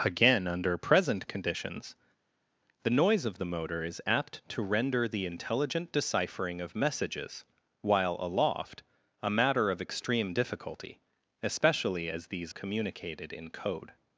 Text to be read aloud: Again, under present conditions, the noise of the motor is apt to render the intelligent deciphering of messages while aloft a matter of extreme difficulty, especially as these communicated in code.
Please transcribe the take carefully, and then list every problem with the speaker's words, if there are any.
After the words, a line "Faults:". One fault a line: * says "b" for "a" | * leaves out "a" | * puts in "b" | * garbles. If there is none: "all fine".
Again, under present conditions, the noise of the motor is apt to render the intelligent deciphering of messages while aloft a matter of extreme difficulty, especially as these communicated in code.
Faults:
all fine